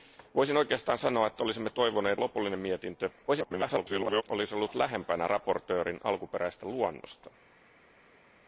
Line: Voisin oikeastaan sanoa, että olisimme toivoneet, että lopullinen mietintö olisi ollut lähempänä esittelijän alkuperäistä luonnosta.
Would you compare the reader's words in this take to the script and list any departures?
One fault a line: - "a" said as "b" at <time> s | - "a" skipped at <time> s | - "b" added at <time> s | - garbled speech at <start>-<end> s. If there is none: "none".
- "että" skipped at 2.2 s
- garbled speech at 3.3-4.2 s